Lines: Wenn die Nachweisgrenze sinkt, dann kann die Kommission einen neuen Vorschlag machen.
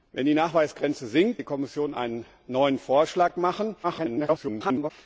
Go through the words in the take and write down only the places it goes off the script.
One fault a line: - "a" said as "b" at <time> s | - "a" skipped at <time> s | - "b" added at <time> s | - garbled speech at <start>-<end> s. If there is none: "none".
- "dann kann" skipped at 1.4 s
- garbled speech at 3.8-4.9 s